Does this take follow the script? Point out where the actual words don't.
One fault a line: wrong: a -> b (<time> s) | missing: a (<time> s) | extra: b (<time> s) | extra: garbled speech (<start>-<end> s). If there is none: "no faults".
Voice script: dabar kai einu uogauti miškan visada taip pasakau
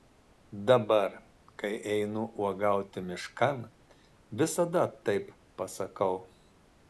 no faults